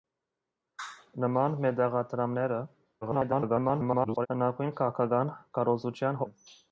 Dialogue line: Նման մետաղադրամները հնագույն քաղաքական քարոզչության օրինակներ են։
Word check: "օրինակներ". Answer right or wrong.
wrong